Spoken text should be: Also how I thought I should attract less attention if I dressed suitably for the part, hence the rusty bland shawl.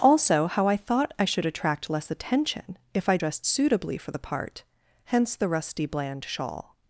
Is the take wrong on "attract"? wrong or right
right